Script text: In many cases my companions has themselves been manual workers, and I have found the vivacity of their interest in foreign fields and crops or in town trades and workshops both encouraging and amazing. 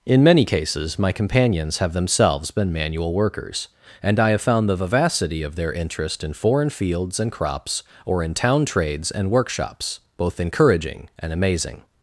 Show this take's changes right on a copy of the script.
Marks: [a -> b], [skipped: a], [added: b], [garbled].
In many cases my companions [has -> have] themselves been manual workers, and I have found the vivacity of their interest in foreign fields and crops or in town trades and workshops both encouraging and amazing.